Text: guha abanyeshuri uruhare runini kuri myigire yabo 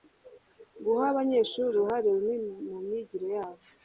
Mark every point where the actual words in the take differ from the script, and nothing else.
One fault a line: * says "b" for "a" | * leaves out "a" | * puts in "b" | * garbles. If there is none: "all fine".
* says "mu" for "kuri"